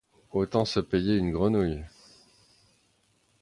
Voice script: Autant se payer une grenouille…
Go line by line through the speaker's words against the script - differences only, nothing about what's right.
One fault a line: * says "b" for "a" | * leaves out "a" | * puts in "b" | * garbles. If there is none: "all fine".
all fine